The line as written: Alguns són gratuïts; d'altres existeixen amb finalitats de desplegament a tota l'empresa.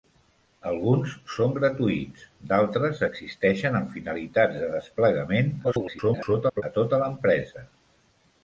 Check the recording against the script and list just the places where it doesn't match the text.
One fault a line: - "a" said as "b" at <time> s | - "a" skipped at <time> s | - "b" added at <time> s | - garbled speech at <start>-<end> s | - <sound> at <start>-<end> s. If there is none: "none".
- garbled speech at 5.6-6.6 s